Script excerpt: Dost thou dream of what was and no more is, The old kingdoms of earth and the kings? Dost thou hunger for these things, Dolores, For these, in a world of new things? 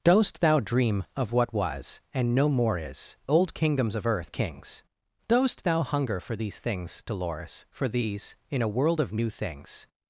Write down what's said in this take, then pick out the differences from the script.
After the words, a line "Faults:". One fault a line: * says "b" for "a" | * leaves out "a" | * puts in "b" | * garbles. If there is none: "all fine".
Dost thou dream of what was and no more is, Old kingdoms of earth the kings? Dost thou hunger for these things, Dolores, For these, in a world of new things?
Faults:
* leaves out "The"
* leaves out "and"